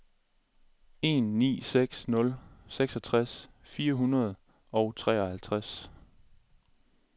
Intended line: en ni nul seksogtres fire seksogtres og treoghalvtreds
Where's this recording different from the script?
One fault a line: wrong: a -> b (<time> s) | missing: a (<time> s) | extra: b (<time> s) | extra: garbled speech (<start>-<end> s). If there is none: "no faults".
extra: seks (1.6 s)
wrong: seksogtres -> hundrede (3.9 s)